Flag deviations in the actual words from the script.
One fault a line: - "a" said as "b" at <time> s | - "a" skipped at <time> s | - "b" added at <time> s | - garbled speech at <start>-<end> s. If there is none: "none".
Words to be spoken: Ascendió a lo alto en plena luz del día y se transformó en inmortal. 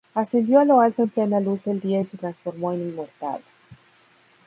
none